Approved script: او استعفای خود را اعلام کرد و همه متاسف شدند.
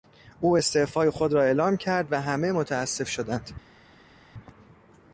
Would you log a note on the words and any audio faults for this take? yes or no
no